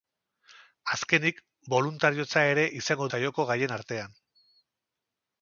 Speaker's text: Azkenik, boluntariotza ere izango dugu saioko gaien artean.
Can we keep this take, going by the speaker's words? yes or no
no